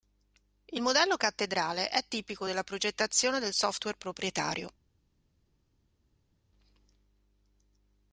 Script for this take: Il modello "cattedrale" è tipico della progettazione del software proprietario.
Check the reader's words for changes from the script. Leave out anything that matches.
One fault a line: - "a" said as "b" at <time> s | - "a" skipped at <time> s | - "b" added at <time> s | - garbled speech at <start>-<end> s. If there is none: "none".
none